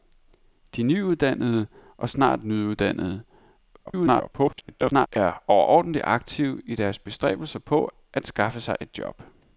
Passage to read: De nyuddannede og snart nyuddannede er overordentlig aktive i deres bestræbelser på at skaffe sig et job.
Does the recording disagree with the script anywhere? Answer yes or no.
yes